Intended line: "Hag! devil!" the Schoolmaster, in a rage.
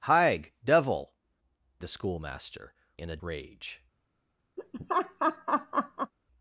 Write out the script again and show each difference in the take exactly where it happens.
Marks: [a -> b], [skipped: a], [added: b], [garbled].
"Hag! devil!" the Schoolmaster, in a rage.